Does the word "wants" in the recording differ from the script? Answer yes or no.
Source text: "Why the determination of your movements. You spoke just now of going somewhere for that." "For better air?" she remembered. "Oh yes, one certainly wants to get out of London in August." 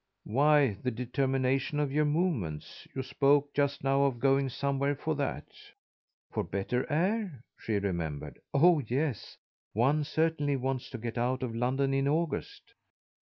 no